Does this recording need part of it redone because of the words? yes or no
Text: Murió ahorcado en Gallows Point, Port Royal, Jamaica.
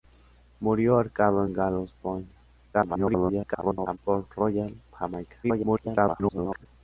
yes